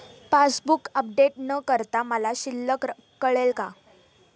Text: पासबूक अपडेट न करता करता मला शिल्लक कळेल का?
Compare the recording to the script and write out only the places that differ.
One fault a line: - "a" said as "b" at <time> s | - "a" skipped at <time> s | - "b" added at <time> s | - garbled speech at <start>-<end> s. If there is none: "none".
- "करता" skipped at 2.0 s